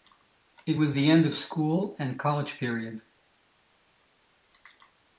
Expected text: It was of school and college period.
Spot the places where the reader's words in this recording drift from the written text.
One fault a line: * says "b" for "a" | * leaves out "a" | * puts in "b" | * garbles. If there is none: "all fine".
* puts in "the end"